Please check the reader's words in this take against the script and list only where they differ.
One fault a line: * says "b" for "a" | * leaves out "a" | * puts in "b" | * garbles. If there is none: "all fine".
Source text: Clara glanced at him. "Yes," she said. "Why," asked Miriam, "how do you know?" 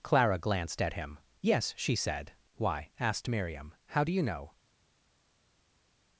all fine